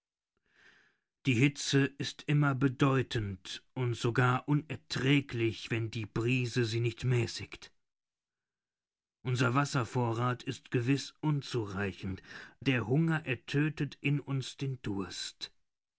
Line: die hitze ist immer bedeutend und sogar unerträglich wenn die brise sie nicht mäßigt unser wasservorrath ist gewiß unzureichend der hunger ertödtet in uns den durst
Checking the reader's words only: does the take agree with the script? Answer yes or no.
yes